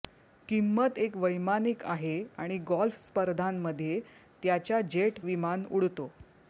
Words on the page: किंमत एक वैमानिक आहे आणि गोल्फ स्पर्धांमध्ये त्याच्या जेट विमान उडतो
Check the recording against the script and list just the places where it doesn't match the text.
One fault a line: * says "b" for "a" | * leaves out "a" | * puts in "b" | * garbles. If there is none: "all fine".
all fine